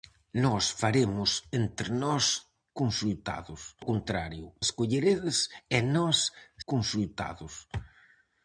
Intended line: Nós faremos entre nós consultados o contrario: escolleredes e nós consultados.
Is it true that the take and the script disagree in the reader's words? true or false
false